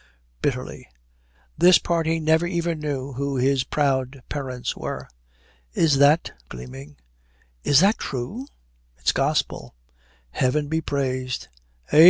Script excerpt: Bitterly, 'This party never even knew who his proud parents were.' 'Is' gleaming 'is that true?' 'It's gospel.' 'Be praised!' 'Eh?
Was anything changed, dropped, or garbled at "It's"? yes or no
no